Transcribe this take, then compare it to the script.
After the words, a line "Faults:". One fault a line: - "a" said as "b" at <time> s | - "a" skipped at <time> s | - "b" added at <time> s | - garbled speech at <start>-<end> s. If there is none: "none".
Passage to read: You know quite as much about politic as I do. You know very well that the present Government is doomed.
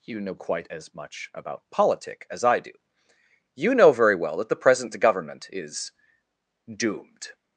You know quite as much about politic as I do. You know very well that the present Government is doomed.
Faults:
none